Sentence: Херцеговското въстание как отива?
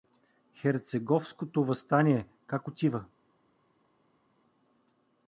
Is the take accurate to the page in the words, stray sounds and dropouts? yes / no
yes